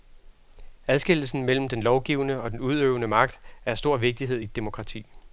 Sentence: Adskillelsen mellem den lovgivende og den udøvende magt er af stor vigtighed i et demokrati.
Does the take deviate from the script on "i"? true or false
false